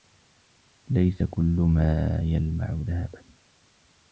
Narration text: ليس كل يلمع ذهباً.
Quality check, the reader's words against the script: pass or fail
fail